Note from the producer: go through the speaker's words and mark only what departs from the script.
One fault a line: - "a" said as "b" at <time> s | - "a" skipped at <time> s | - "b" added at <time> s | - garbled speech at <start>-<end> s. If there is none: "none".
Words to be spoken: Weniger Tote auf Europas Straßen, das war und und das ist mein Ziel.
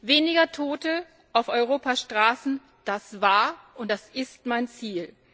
- "und" skipped at 3.9 s